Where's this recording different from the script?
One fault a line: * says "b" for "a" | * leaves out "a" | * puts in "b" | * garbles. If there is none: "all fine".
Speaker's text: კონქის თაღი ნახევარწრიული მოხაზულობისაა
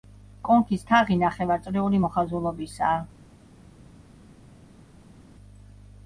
all fine